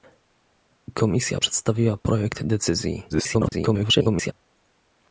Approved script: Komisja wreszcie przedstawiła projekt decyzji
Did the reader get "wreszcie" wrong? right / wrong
wrong